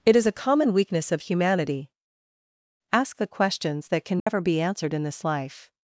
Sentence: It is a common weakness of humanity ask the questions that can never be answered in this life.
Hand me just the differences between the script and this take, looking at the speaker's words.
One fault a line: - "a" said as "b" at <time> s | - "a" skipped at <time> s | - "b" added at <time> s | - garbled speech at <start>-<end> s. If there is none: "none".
none